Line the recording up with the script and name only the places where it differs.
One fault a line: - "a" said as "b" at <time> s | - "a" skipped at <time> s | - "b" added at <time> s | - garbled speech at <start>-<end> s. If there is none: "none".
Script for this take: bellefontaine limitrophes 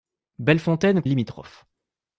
none